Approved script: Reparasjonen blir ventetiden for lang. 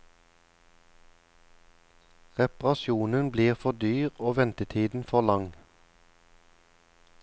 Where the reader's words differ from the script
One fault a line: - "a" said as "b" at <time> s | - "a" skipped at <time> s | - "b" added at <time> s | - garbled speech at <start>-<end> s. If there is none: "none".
- "for dyr og" added at 3.5 s